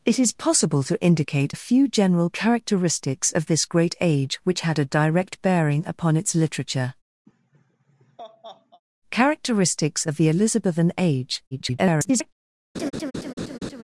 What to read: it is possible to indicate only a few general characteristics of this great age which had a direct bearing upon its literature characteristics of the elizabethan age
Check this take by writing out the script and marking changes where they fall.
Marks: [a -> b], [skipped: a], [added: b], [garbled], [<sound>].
it is possible to indicate [skipped: only] a few general characteristics of this great age which had a direct bearing upon its literature [laugh] characteristics of the elizabethan age [garbled] [laugh]